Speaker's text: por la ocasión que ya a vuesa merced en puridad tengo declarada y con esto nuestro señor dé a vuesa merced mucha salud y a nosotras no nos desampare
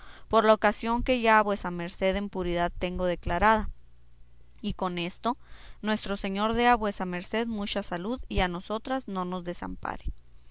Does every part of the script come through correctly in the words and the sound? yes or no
yes